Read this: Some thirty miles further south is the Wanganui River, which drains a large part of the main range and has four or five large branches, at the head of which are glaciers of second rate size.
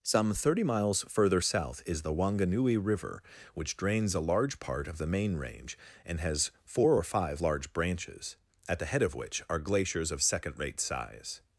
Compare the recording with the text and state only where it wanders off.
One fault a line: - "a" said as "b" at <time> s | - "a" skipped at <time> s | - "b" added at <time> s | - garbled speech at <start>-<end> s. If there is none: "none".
none